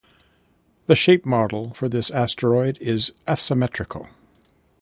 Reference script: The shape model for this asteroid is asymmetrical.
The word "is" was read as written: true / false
true